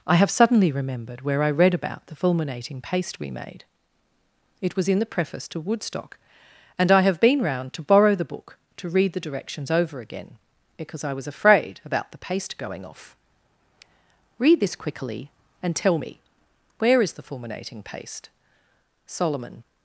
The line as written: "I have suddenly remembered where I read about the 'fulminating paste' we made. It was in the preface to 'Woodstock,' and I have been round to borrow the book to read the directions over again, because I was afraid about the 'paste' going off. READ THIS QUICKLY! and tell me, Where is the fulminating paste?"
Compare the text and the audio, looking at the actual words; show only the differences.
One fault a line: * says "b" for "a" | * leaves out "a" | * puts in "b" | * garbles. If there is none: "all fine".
* puts in "Solomon"